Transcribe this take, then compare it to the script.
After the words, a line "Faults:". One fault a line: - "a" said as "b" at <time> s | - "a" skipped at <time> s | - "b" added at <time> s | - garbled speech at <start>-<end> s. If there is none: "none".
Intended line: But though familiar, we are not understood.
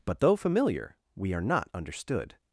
But though familiar, we are not understood.
Faults:
none